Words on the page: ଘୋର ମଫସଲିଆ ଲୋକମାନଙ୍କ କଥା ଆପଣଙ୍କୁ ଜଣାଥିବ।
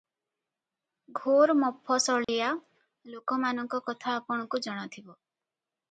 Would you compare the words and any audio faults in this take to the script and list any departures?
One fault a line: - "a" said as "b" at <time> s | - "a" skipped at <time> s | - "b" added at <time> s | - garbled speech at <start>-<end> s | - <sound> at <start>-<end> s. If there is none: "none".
- dropout at 2.2-2.3 s